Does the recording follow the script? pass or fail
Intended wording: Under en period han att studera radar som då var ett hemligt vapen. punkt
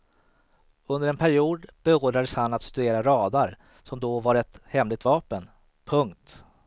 fail